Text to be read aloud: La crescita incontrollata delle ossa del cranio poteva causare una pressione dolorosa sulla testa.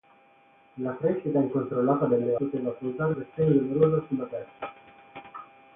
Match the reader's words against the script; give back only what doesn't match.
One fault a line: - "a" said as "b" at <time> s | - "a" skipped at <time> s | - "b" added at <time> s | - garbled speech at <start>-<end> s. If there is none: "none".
- "ossa del cranio" skipped at 2.4 s
- "una" skipped at 3.1 s